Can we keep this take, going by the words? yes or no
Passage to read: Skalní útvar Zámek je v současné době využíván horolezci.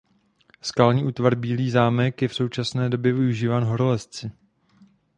no